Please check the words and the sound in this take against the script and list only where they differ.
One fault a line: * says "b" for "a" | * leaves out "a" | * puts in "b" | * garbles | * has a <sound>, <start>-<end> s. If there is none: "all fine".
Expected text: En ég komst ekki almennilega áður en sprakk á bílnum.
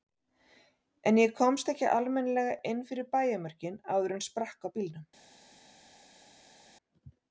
* puts in "inn fyrir bæjarmörkin"